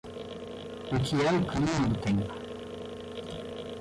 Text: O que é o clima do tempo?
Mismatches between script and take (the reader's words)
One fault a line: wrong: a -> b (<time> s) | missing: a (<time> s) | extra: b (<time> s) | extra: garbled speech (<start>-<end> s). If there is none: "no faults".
no faults